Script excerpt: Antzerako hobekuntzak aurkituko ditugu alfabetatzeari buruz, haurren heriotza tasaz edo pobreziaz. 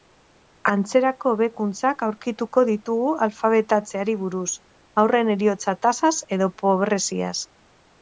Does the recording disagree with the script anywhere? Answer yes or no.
no